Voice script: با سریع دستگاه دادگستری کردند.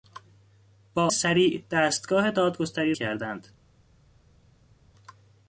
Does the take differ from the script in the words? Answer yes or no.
no